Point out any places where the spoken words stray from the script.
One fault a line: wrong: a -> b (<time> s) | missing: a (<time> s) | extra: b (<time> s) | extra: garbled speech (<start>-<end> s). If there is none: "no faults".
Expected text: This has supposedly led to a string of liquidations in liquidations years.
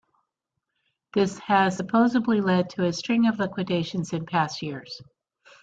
wrong: liquidations -> past (4.3 s)